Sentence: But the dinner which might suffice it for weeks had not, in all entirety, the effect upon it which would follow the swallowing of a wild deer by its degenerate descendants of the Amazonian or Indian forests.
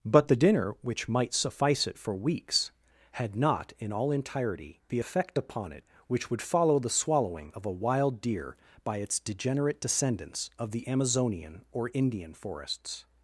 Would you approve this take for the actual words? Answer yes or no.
yes